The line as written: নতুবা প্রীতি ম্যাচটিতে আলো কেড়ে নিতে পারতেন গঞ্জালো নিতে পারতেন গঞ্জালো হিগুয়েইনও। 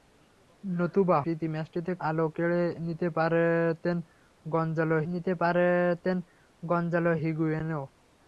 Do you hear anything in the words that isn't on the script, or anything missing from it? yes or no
no